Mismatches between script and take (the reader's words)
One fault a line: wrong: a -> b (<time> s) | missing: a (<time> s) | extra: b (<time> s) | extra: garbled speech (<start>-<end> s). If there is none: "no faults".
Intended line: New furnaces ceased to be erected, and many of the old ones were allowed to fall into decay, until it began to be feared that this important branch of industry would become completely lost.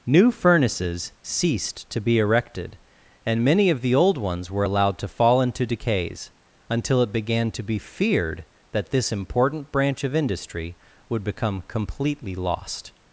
wrong: decay -> decays (5.7 s)